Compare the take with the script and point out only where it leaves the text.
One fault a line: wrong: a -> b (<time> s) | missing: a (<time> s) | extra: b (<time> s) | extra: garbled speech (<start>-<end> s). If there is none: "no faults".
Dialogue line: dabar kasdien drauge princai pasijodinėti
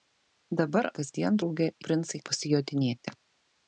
no faults